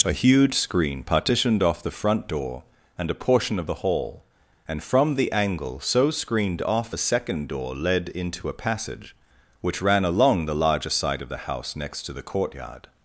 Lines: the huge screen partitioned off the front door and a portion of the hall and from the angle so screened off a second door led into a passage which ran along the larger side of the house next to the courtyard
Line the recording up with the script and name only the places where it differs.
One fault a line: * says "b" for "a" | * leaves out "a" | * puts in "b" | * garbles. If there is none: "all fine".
* says "a" for "the"